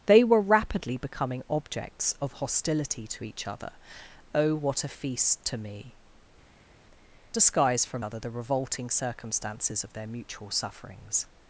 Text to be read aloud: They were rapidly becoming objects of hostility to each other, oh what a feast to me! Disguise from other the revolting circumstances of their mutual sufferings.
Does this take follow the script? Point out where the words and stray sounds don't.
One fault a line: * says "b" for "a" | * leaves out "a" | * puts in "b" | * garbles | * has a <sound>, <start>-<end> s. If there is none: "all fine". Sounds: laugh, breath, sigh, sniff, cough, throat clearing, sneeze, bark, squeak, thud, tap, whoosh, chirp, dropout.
all fine